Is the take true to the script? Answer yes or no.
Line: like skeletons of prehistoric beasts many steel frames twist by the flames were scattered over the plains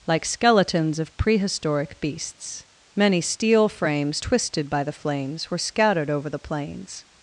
no